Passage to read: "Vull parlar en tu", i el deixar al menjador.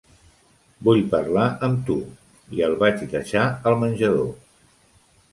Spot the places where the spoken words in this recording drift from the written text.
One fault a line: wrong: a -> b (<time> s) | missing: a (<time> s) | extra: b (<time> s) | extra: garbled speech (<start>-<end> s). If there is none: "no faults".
wrong: en -> amb (1.7 s)
extra: vaig (2.8 s)